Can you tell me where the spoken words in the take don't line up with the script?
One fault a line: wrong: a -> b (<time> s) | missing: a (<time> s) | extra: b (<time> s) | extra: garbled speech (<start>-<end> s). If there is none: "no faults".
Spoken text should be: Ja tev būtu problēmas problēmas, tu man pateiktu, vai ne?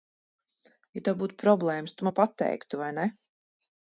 missing: problēmas (2.0 s)